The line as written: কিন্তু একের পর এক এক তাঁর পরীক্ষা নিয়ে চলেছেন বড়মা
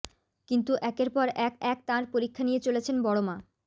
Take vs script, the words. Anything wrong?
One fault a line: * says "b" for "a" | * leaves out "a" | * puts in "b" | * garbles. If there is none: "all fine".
all fine